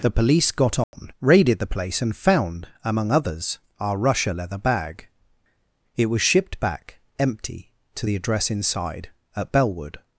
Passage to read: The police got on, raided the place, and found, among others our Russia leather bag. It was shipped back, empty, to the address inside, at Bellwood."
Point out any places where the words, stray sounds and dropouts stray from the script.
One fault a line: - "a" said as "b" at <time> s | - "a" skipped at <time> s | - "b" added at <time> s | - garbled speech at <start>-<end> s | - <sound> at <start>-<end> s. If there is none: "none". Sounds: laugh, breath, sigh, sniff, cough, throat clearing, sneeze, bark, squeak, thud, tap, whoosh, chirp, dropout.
- dropout at 0.8-0.9 s